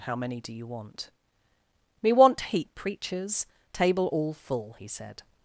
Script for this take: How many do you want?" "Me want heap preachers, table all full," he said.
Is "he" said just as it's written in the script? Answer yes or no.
yes